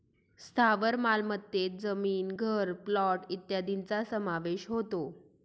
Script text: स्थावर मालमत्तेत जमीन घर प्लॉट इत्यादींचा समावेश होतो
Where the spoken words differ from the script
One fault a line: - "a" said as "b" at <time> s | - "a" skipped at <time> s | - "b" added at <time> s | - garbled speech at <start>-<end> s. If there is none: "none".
none